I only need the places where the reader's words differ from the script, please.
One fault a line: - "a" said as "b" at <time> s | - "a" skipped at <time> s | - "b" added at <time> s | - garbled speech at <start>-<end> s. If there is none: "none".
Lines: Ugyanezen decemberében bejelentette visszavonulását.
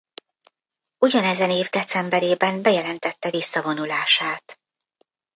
- "év" added at 1.5 s